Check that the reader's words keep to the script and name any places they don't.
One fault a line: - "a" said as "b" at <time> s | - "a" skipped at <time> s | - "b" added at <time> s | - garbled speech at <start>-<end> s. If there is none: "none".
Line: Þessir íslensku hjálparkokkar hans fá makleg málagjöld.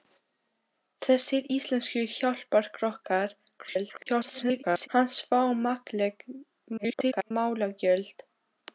- garbled speech at 3.6-4.9 s
- garbled speech at 6.8-7.3 s